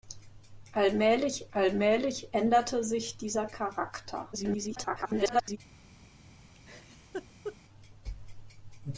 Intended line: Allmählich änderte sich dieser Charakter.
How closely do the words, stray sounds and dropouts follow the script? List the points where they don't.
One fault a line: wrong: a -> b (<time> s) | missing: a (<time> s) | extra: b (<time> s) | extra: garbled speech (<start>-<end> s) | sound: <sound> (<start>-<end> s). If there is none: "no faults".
extra: allmählich (1.5 s)
extra: garbled speech (4.3-5.6 s)
sound: laugh (6.5-7.6 s)